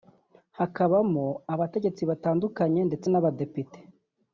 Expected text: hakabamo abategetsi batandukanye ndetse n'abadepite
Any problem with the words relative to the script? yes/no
no